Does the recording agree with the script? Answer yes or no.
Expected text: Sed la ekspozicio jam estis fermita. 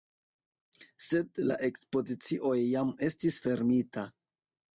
yes